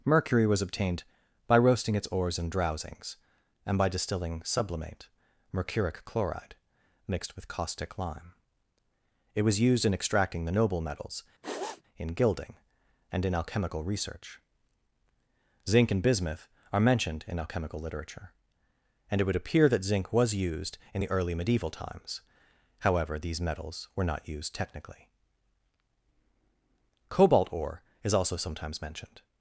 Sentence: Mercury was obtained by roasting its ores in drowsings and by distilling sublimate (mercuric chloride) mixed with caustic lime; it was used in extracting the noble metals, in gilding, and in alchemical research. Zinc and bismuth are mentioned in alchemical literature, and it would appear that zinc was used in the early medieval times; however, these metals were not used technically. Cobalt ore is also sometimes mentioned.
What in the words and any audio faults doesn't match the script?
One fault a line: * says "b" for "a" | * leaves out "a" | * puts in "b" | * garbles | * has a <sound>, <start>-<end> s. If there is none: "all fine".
* has a sniff, 11.4-11.8 s